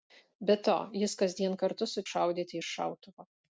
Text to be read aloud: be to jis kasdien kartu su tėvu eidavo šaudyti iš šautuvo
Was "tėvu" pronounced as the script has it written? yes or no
no